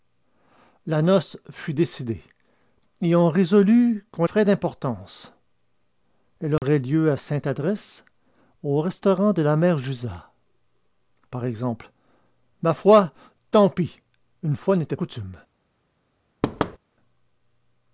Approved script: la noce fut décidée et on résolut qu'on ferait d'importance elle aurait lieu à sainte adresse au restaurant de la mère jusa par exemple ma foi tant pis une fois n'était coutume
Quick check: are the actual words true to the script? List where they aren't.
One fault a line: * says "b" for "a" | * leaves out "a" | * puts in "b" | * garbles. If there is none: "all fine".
all fine